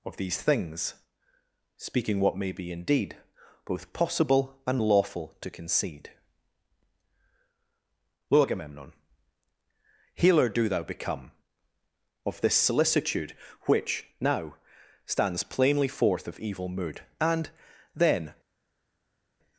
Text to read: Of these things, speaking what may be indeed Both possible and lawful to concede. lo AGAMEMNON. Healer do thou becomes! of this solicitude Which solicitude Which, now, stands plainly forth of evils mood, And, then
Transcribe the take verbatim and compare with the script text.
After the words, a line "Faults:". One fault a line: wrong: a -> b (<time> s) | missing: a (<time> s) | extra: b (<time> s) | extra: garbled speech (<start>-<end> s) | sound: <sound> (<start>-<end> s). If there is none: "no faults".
Of these things, speaking what may be indeed Both possible and lawful to concede. lo AGAMEMNON. Healer do thou become! of this solicitude Which, now, stands plainly forth of evil mood, And, then
Faults:
wrong: becomes -> become (10.8 s)
missing: solicitude Which (14.1 s)
wrong: evils -> evil (16.4 s)